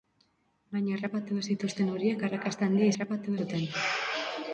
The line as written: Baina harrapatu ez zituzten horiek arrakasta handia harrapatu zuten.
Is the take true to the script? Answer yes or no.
yes